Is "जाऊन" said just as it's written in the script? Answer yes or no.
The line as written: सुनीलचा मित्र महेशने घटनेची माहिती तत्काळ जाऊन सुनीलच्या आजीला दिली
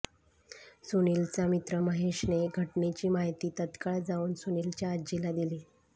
yes